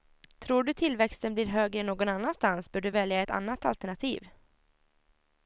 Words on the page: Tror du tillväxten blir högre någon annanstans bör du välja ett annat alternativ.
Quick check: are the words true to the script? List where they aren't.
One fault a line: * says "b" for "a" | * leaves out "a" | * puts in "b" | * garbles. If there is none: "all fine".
all fine